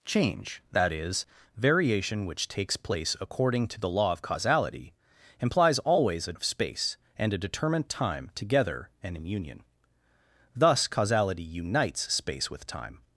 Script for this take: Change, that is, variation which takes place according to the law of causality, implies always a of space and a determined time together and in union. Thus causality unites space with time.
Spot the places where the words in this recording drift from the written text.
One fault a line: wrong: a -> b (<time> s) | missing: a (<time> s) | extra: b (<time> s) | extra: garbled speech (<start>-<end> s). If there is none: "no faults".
no faults